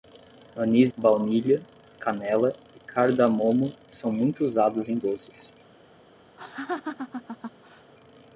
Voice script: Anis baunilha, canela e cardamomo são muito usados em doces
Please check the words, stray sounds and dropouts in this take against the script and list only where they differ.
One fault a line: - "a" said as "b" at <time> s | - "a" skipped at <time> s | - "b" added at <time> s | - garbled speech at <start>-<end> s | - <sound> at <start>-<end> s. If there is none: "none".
- laugh at 6.4-7.9 s